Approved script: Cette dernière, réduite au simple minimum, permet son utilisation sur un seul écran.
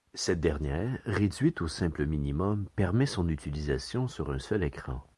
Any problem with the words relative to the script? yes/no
no